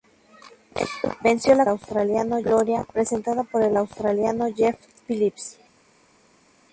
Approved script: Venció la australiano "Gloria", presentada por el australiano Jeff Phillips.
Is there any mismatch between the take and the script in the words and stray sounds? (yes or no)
no